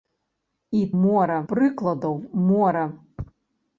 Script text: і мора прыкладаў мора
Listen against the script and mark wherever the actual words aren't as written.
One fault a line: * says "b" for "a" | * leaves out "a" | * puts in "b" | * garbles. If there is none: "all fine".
all fine